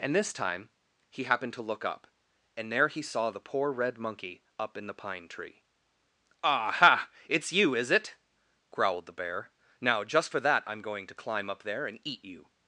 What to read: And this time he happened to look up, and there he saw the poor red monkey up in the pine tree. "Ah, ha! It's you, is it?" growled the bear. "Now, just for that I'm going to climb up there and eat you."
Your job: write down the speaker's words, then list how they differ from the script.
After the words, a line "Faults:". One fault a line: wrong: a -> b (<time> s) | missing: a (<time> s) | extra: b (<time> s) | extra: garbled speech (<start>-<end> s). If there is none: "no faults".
And this time he happened to look up, and there he saw the poor red monkey up in the pine tree. "Ah, ha! It's you, is it?" growled the bear. "Now, just for that I'm going to climb up there and eat you."
Faults:
no faults